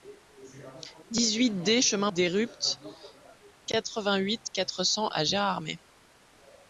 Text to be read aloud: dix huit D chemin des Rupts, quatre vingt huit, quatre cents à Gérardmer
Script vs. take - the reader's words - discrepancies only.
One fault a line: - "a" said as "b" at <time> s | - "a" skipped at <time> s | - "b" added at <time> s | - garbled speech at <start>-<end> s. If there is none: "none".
none